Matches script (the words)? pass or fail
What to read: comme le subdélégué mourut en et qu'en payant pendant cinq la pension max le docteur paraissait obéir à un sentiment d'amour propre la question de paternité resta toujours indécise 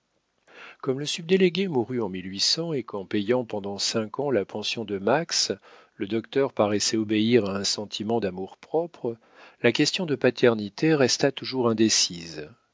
fail